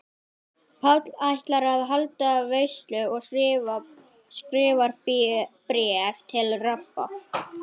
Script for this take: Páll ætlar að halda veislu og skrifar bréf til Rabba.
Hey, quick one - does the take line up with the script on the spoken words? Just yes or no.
yes